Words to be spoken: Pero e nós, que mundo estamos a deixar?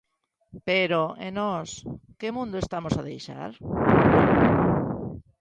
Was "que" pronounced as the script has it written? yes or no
yes